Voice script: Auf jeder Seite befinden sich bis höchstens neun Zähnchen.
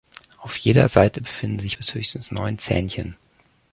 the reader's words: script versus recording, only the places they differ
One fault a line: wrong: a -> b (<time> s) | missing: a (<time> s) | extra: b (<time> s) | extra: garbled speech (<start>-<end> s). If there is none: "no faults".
no faults